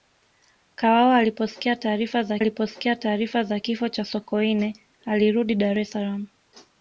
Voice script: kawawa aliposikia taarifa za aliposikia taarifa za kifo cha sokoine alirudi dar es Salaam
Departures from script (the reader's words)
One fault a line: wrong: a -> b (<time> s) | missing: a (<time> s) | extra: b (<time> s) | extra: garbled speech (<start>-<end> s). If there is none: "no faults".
no faults